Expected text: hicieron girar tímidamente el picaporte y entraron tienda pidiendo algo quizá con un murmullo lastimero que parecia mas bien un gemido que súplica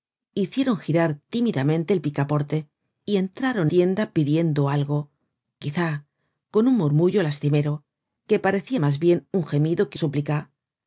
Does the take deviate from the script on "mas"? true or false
false